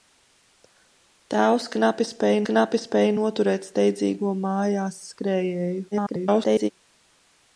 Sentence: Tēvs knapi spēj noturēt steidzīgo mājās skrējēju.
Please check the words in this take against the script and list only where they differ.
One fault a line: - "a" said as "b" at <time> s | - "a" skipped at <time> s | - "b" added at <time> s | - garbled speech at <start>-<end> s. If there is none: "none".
- "knapi spēj" added at 2.5 s
- garbled speech at 5.9-6.7 s